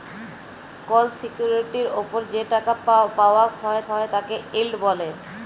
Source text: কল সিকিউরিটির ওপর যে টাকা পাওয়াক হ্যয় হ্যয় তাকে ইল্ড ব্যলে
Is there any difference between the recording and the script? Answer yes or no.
no